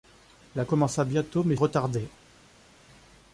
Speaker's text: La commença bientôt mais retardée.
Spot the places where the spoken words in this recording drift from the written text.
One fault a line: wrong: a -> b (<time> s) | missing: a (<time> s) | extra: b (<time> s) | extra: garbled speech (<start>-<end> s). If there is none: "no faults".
no faults